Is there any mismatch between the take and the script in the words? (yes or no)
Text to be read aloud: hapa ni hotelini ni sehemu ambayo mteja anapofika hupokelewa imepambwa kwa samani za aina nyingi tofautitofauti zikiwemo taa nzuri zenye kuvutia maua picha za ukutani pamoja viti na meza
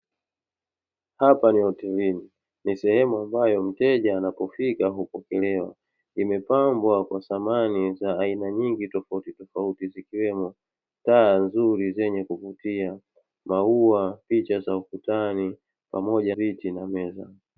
no